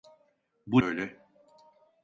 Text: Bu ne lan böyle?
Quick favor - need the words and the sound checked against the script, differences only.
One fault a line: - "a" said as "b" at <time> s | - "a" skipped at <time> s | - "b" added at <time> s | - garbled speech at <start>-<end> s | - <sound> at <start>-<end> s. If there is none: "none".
- "ne lan" skipped at 0.8 s